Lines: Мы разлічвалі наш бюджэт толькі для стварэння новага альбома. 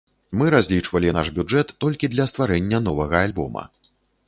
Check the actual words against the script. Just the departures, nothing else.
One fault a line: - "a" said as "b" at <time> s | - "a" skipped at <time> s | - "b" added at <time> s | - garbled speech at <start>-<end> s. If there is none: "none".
none